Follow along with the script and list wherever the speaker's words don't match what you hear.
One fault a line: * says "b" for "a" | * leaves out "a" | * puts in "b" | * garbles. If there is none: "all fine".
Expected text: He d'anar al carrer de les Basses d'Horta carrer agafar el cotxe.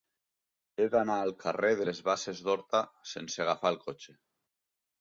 * says "sense" for "carrer"